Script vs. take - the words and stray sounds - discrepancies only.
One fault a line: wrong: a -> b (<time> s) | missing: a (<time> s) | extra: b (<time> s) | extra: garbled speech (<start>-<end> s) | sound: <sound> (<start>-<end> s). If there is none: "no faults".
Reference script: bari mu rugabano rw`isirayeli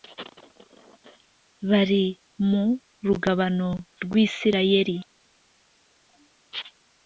no faults